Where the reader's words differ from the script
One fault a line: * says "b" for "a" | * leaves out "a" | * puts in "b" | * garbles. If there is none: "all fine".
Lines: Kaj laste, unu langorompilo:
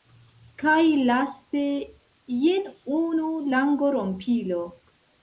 * puts in "jen"